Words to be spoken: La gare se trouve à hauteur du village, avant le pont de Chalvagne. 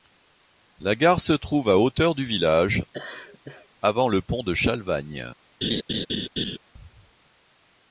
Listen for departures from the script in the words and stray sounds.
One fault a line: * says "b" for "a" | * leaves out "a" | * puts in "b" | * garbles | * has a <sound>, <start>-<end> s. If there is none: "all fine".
* has a laugh, 2.9-3.7 s
* has a laugh, 5.6-6.6 s